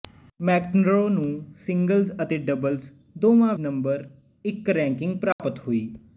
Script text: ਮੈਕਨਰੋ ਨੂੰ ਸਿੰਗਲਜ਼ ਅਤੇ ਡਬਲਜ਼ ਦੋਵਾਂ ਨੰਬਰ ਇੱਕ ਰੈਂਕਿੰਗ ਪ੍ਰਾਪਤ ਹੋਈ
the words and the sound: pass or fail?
fail